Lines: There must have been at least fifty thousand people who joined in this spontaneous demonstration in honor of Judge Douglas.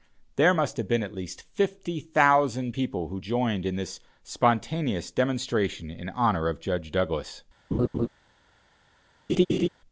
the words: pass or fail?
pass